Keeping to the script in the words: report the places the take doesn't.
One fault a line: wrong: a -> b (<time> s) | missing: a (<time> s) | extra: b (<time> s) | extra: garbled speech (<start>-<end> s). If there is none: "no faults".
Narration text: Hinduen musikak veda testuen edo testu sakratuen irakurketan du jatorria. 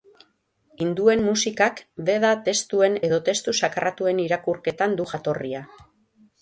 no faults